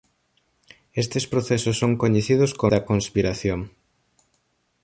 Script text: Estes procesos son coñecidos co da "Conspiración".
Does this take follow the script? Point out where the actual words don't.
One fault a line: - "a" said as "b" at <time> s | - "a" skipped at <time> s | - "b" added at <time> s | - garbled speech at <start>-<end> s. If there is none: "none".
none